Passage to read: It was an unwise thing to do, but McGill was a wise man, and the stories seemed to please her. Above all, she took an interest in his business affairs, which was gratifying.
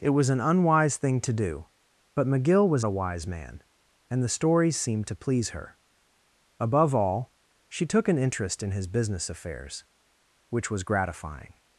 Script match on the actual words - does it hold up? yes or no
yes